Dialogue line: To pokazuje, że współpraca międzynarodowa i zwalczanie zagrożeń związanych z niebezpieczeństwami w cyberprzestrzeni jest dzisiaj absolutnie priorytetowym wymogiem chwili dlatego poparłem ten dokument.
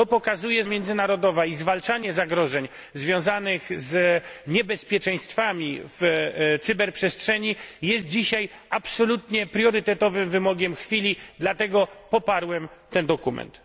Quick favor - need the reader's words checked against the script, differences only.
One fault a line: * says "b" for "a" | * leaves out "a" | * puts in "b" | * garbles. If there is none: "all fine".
* leaves out "że współpraca"